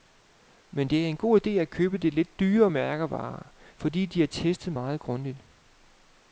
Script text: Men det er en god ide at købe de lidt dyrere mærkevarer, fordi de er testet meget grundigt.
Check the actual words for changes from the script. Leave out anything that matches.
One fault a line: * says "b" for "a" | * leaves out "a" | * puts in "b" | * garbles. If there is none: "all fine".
all fine